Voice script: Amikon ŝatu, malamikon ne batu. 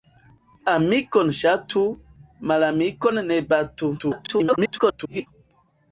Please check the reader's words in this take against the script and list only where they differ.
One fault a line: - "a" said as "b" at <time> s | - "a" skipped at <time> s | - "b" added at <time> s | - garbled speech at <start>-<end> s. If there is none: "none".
- garbled speech at 4.0-5.3 s